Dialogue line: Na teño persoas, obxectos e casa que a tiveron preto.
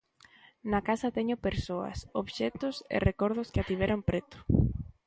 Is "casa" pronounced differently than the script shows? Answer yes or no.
yes